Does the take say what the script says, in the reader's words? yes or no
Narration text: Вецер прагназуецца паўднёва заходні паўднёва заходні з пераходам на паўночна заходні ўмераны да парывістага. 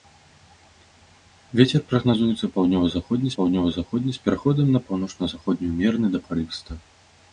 yes